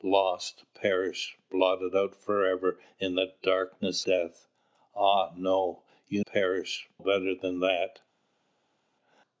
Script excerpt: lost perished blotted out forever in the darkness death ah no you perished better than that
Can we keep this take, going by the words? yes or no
yes